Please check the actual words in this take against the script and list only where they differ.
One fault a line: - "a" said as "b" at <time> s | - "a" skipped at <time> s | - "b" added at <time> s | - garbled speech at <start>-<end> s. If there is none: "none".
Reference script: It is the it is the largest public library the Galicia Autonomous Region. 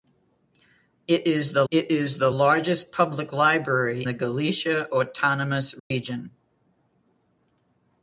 none